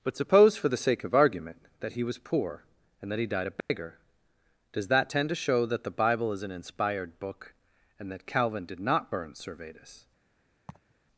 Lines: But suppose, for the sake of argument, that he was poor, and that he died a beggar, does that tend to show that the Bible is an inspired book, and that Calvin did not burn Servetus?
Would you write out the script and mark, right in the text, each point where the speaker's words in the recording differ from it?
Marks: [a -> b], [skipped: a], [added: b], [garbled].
But suppose, for the sake of argument, that he was poor, and that he died a beggar, does that tend to show that the Bible is an inspired book, and that Calvin did not burn Servetus?